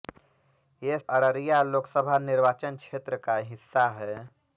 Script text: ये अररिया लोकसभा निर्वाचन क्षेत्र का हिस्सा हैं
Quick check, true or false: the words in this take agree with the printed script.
true